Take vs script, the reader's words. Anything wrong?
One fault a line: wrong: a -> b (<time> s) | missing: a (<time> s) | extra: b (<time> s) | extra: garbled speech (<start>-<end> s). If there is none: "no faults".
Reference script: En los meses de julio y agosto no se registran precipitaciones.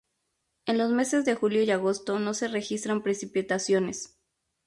no faults